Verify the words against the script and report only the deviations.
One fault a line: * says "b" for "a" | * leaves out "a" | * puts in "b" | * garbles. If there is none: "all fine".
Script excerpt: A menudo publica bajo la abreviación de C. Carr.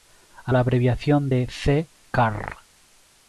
* leaves out "menudo publica bajo"